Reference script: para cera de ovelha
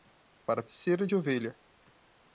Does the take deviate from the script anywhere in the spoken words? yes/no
no